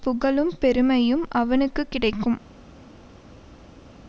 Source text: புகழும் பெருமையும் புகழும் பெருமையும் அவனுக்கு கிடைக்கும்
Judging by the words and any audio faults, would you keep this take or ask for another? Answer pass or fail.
fail